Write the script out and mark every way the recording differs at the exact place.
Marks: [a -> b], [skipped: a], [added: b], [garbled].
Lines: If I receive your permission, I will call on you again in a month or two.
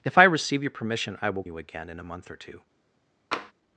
If I receive your permission, I will [skipped: call on] you again in a month or two.